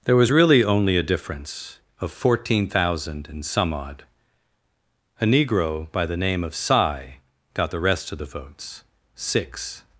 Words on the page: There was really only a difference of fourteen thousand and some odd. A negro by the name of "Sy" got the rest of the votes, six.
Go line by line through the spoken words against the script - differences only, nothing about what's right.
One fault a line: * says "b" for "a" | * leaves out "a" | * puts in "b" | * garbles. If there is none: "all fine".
all fine